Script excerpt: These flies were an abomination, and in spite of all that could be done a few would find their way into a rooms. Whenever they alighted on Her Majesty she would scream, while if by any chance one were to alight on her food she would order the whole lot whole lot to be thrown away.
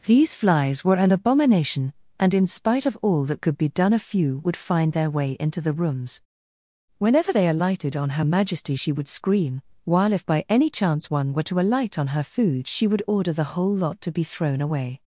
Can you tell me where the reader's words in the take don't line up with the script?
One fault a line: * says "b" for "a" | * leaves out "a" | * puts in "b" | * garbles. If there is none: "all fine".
* says "the" for "a"
* leaves out "whole lot"